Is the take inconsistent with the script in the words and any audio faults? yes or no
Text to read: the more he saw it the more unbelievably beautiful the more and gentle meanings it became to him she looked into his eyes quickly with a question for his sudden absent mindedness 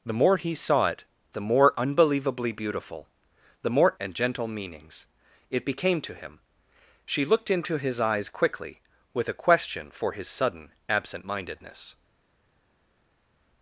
no